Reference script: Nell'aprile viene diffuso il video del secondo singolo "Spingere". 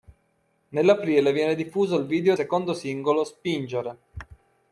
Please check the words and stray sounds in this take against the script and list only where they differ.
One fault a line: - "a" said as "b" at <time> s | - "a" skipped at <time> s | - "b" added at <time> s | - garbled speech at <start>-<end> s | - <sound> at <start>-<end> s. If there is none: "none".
- "del" skipped at 2.4 s